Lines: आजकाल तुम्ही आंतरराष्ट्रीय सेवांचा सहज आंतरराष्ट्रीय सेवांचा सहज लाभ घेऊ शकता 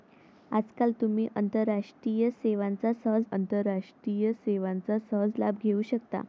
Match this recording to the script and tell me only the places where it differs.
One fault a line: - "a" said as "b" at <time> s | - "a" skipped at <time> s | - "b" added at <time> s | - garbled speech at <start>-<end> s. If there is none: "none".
none